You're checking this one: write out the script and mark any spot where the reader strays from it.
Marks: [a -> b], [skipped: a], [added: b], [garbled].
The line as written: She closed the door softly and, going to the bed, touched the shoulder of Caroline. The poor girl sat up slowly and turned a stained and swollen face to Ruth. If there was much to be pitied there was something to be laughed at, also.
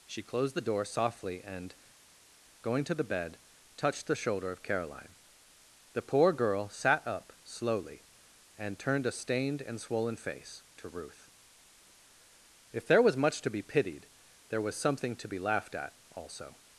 She closed the door softly and, going to the bed, touched the shoulder of Caroline. The poor girl sat up slowly and turned a stained and swollen face to Ruth. If there was much to be pitied there was something to be laughed at, also.